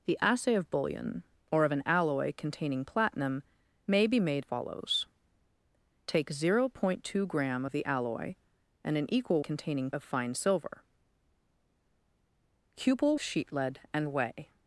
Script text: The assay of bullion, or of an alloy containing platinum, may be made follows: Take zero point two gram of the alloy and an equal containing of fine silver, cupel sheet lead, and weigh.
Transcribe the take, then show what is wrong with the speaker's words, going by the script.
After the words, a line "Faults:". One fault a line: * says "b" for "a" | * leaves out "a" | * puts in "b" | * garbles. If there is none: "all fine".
The assay of bullion, or of an alloy containing platinum, may be made follows: Take zero point two gram of the alloy and an equal containing of fine silver, cupel sheet lead, and weigh.
Faults:
all fine